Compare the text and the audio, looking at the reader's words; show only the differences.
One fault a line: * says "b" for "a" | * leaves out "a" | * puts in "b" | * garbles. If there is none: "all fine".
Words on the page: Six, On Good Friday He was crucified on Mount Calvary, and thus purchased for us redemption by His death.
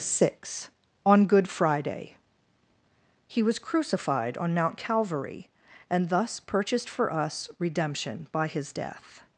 all fine